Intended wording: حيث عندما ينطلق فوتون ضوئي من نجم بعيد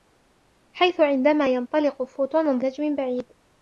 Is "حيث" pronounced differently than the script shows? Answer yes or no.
no